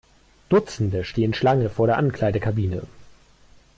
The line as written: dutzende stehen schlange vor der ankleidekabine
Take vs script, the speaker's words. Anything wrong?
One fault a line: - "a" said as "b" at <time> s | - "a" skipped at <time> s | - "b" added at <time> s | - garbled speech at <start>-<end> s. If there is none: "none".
none